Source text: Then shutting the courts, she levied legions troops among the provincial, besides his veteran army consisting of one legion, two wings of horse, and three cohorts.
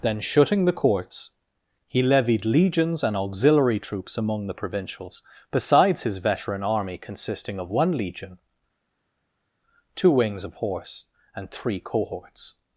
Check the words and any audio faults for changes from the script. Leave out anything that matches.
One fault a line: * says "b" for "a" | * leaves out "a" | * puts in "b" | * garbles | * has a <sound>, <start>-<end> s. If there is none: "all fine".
* says "he" for "she"
* puts in "and auxiliary"
* says "provincials" for "provincial"